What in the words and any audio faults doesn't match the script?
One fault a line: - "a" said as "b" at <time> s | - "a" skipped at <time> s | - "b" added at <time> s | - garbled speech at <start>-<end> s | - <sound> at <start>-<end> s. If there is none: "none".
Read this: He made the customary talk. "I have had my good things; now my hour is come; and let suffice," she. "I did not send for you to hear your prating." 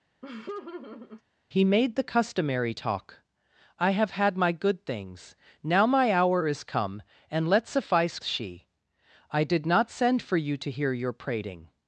- laugh at 0.2-1.2 s